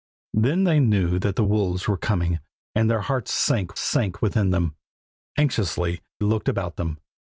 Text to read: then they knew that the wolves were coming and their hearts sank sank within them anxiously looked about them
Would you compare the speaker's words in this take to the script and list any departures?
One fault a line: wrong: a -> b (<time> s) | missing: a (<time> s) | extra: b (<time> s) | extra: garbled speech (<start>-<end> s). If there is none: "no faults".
no faults